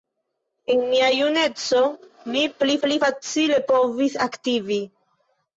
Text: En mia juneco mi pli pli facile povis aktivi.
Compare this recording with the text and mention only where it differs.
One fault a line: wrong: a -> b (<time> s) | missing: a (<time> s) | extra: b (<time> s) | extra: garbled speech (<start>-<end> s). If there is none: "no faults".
no faults